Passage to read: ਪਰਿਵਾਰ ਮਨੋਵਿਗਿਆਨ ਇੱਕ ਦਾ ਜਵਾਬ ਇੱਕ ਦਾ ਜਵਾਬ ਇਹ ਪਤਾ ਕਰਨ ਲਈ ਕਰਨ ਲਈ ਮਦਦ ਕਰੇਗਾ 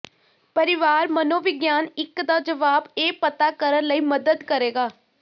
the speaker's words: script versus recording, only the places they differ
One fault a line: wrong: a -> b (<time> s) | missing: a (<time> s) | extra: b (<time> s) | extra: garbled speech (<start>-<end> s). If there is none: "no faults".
missing: ਇੱਕ ਦਾ ਜਵਾਬ (2.9 s)
missing: ਕਰਨ ਲਈ (4.0 s)